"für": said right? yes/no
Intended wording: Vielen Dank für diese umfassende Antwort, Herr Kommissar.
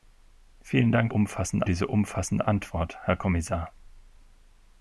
no